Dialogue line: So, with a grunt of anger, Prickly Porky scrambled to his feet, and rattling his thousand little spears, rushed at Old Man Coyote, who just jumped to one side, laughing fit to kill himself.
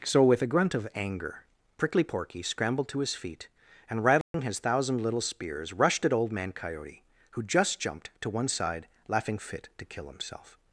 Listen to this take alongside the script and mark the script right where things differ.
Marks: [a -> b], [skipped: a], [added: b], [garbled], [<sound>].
So, with a grunt of anger, Prickly Porky scrambled to his feet, and rattling [dropout] his thousand little spears, rushed at Old Man Coyote, who just jumped to one side, laughing fit to kill himself.